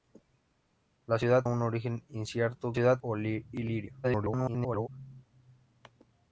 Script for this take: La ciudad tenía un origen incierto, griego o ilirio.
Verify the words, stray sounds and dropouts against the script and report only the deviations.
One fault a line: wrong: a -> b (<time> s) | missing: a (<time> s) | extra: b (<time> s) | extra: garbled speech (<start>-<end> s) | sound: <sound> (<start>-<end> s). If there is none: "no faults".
missing: tenía (1.4 s)
wrong: griego -> ciudad (2.7 s)
extra: garbled speech (4.0-4.9 s)